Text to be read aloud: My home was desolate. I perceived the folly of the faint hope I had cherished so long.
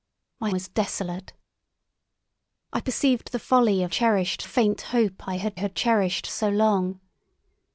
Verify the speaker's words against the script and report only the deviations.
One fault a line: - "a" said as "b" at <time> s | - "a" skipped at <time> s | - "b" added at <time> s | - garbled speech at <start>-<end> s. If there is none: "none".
- "home" skipped at 0.5 s
- "the" said as "cherished" at 3.9 s
- "had" added at 5.6 s